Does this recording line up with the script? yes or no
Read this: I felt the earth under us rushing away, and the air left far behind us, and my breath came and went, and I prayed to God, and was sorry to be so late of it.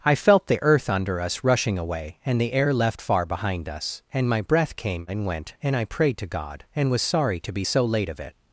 yes